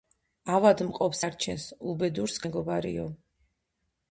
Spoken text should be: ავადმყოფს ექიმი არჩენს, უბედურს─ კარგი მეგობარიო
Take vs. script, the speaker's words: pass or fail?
fail